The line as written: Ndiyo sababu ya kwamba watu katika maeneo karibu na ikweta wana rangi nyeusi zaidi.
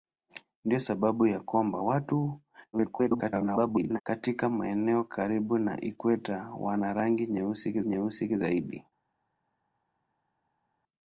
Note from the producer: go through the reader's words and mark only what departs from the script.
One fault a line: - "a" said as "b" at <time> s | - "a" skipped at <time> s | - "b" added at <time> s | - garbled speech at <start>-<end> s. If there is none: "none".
- garbled speech at 2.7-4.0 s
- "nyeusi" added at 7.8 s